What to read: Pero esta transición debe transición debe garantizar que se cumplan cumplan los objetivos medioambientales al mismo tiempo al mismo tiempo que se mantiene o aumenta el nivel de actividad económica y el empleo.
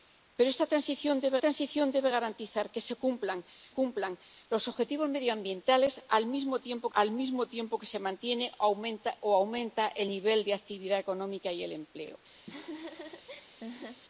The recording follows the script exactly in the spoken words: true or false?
true